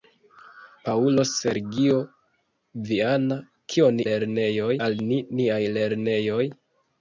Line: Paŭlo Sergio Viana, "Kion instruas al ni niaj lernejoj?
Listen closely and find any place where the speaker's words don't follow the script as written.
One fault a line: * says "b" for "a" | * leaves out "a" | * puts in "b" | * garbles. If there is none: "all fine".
* says "lernejoj" for "instruas"